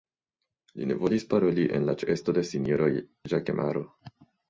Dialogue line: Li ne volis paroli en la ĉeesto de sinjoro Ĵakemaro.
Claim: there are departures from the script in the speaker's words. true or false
false